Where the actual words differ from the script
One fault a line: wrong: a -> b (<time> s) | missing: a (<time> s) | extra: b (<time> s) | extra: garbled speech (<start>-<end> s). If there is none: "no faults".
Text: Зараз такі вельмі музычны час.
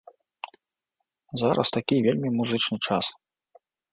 no faults